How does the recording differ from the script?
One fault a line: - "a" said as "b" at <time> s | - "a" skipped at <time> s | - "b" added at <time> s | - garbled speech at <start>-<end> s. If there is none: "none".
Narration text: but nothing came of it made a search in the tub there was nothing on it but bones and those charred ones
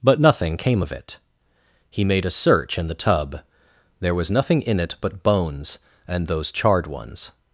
- "he" added at 1.9 s
- "on" said as "in" at 4.6 s